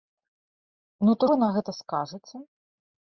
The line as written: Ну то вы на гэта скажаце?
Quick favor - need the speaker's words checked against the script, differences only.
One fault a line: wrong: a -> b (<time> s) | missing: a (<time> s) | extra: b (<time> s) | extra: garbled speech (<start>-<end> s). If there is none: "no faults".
no faults